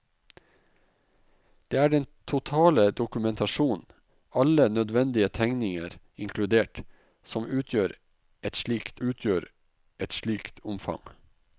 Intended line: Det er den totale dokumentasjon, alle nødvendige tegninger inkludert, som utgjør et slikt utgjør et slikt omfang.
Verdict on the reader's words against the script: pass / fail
pass